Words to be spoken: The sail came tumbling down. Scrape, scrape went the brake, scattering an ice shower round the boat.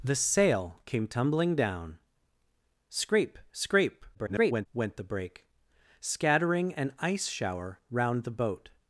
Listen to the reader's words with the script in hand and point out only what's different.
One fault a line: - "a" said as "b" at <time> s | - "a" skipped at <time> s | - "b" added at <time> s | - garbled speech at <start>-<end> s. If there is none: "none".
- garbled speech at 4.1-4.7 s